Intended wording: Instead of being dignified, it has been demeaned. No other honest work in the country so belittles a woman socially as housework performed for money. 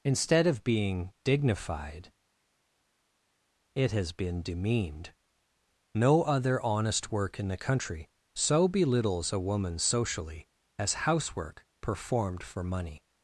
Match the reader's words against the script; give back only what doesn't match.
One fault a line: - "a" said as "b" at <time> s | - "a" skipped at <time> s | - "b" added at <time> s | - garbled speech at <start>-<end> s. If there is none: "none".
none